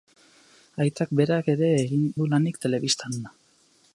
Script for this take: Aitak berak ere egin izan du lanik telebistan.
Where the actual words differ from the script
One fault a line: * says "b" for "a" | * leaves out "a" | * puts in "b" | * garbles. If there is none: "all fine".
* leaves out "izan"